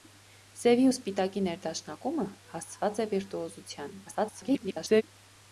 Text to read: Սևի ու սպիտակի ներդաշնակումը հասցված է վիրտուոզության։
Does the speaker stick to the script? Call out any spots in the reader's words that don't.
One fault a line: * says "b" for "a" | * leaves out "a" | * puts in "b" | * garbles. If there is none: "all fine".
* garbles